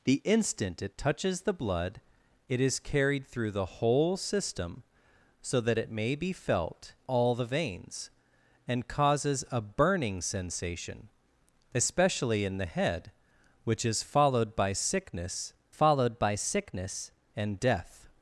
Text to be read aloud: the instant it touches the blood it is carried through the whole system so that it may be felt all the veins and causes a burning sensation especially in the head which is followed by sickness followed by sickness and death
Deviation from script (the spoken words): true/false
false